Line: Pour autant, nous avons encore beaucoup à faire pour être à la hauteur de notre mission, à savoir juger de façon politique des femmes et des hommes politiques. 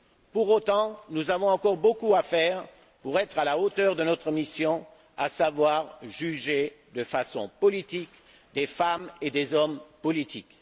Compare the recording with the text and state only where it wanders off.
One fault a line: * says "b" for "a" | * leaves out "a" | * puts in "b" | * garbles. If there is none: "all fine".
all fine